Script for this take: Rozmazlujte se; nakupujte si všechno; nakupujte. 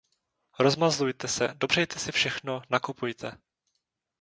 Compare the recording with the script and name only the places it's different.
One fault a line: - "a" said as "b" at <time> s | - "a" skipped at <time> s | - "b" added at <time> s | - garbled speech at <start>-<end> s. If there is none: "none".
- "nakupujte" said as "dopřejte" at 1.6 s